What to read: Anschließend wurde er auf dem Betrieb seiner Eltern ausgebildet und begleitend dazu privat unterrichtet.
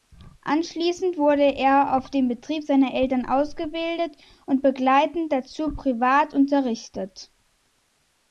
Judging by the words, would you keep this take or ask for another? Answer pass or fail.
pass